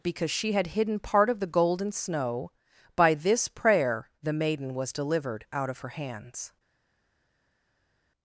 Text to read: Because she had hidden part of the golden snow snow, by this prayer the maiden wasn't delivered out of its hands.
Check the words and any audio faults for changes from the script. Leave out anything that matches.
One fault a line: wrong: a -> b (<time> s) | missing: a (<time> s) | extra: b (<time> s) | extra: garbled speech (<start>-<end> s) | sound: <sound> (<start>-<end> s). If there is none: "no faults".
missing: snow (2.5 s)
wrong: wasn't -> was (4.7 s)
wrong: its -> her (5.8 s)